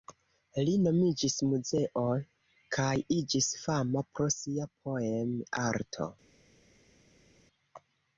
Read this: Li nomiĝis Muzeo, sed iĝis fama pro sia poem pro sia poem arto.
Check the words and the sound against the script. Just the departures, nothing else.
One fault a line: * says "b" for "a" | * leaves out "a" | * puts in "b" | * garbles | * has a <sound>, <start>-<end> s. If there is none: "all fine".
* says "kaj" for "sed"
* leaves out "pro sia poem"